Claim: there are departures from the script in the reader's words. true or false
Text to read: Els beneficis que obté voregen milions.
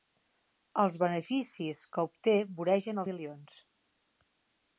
false